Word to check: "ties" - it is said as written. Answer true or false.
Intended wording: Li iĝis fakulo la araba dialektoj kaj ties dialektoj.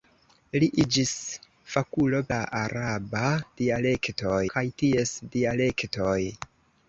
true